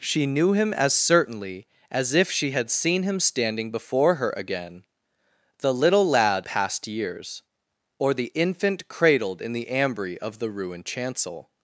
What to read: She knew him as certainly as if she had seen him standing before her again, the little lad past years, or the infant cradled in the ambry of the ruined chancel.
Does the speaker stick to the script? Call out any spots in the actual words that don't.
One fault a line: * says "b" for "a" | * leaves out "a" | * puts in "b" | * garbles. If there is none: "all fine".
all fine